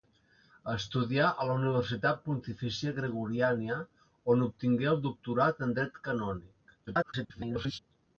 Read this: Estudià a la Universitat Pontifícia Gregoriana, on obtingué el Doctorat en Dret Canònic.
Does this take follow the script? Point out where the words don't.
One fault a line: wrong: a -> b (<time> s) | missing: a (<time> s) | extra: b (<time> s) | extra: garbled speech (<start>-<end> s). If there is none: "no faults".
extra: garbled speech (6.9-7.8 s)